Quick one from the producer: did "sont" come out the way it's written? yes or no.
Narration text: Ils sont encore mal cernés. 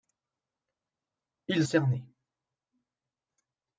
no